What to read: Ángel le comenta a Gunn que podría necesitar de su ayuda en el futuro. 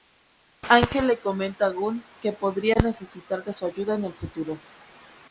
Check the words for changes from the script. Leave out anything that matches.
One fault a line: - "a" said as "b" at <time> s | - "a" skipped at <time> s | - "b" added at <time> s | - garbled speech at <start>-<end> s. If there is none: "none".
none